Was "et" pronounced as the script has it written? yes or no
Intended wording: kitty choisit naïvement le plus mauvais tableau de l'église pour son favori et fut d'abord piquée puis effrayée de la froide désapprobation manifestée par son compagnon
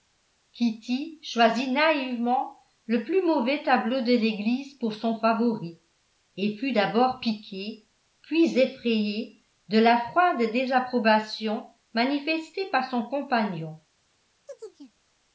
yes